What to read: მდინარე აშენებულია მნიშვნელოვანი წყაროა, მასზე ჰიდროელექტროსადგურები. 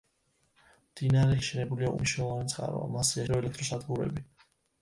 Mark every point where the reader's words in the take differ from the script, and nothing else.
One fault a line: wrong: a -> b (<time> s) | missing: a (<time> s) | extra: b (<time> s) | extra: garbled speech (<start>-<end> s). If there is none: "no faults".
no faults